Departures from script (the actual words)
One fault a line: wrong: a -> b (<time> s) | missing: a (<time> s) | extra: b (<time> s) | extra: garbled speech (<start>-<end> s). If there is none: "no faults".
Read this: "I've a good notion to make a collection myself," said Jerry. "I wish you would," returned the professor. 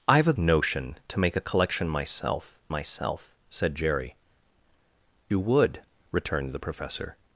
missing: good (0.3 s)
extra: myself (2.7 s)
missing: I wish (4.2 s)